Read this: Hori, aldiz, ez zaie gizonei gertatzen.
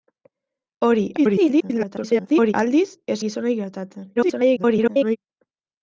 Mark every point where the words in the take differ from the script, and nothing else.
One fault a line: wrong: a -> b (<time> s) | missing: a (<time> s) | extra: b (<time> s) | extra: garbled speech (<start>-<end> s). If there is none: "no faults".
extra: garbled speech (1.2-2.5 s)
missing: zaie (3.2 s)
extra: garbled speech (4.2-5.2 s)